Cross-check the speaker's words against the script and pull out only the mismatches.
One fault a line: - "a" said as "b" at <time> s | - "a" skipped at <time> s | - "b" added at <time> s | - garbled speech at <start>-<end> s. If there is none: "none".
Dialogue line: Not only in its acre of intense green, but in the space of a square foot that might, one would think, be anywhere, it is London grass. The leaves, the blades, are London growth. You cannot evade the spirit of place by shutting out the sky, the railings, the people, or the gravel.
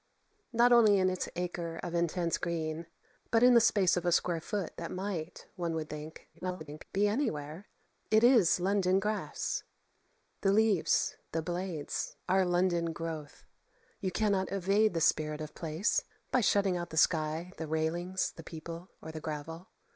- garbled speech at 6.3-6.8 s